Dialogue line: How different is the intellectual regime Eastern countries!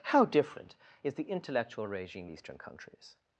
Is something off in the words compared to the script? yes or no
no